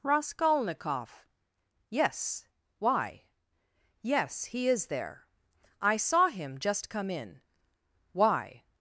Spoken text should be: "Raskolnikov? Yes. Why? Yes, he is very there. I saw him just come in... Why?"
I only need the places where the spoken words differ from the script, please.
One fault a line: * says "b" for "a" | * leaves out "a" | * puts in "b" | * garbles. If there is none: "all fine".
* leaves out "very"